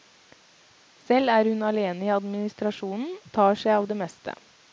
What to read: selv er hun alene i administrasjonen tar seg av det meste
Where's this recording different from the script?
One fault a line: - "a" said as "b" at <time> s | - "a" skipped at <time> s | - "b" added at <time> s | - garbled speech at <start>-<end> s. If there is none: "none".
none